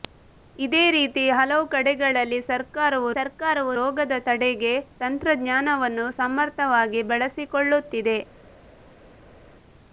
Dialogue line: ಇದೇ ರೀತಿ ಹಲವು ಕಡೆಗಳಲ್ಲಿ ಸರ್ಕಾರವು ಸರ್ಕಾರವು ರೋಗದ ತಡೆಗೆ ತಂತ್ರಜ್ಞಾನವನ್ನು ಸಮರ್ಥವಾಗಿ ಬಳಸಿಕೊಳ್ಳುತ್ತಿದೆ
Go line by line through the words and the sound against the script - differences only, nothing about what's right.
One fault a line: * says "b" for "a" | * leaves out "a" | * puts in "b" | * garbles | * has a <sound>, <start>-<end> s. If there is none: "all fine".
all fine